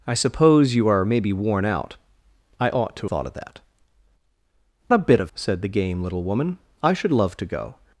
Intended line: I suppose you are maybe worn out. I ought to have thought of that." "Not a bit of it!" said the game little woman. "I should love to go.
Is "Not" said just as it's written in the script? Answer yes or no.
no